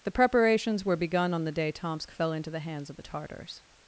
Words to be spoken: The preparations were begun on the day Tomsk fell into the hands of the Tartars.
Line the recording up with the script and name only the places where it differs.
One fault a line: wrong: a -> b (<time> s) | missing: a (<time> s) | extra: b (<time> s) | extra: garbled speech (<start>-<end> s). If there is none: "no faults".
no faults